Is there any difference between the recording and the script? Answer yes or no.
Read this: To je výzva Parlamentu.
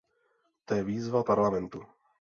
no